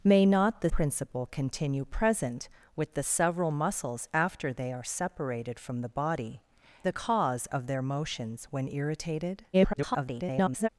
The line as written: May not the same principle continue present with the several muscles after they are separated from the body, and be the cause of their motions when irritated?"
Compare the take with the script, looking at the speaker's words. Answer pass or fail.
fail